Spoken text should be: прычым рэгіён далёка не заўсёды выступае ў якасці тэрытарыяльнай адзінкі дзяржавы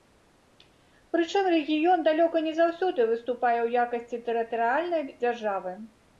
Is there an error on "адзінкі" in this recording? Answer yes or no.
yes